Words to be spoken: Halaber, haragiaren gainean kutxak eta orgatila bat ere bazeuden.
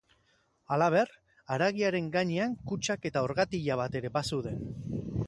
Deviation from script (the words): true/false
false